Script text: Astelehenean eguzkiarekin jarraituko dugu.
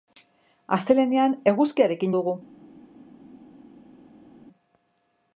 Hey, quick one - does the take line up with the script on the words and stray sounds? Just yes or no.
no